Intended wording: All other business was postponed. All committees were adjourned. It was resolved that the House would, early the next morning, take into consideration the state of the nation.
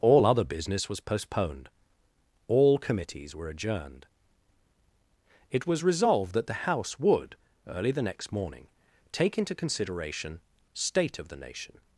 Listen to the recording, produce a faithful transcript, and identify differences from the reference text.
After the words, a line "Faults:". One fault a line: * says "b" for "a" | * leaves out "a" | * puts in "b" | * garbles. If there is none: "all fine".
All other business was postponed. All committees were adjourned. It was resolved that the House would, early the next morning, take into consideration state of the nation.
Faults:
* leaves out "the"